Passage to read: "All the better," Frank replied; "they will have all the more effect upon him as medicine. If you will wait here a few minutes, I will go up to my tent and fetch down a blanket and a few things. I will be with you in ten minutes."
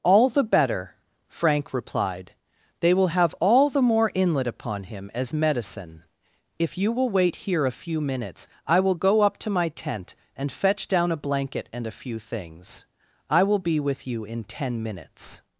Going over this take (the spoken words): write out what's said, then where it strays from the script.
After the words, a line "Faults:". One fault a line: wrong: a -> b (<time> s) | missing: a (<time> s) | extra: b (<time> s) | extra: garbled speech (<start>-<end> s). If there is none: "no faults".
"All the better," Frank replied; "they will have all the more inlet upon him as medicine. If you will wait here a few minutes, I will go up to my tent and fetch down a blanket and a few things. I will be with you in ten minutes."
Faults:
wrong: effect -> inlet (4.1 s)